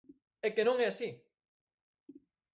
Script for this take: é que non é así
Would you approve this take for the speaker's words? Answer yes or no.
yes